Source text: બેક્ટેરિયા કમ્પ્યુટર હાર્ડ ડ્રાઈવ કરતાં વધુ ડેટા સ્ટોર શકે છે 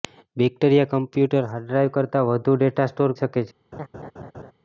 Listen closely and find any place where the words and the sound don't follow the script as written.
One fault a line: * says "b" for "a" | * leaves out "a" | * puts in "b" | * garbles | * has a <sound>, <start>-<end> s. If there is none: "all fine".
* has a laugh, 3.7-4.5 s